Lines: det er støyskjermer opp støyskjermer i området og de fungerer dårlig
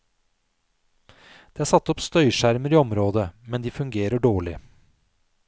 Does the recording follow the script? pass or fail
fail